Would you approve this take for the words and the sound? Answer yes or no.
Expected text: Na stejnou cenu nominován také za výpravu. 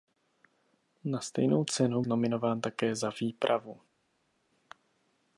yes